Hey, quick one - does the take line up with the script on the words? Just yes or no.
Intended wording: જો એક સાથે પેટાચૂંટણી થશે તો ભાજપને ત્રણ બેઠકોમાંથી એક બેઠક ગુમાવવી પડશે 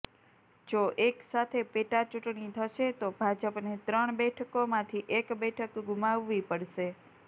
yes